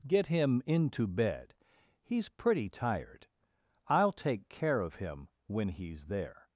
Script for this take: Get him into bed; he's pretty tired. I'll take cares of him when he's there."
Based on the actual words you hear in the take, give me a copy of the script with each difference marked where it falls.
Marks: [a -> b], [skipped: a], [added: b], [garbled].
Get him into bed; he's pretty tired. I'll take [cares -> care] of him when he's there."